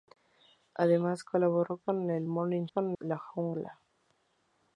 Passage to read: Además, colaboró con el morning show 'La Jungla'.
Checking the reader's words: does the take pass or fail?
fail